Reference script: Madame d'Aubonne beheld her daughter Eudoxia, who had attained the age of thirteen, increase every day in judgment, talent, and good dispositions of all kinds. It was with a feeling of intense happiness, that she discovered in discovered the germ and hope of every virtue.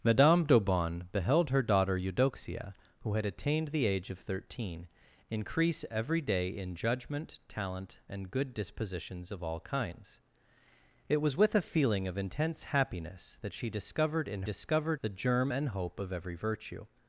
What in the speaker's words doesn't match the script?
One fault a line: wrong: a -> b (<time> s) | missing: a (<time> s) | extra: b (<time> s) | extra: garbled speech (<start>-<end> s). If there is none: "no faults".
no faults